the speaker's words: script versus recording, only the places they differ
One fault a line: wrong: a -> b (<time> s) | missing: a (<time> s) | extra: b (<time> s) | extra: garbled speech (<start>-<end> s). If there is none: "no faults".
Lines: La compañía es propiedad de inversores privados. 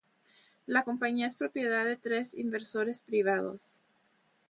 extra: tres (2.0 s)